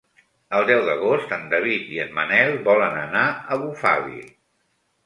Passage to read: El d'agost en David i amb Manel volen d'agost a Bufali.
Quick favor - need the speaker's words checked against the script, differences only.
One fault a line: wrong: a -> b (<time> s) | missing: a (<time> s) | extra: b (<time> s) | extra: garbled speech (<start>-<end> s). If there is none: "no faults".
extra: deu (0.7 s)
wrong: amb -> en (2.1 s)
wrong: d'agost -> anar (3.1 s)